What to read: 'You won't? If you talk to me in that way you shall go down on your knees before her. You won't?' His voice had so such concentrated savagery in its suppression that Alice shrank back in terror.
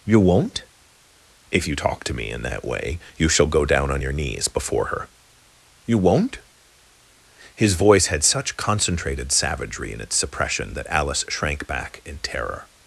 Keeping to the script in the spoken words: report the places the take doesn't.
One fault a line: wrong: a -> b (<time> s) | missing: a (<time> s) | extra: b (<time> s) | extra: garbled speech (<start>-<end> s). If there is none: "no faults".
missing: so (8.2 s)